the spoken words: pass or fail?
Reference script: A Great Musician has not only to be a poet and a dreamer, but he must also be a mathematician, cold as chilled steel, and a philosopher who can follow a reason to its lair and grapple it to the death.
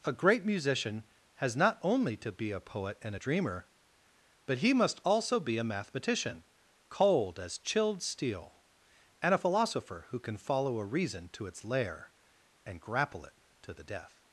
pass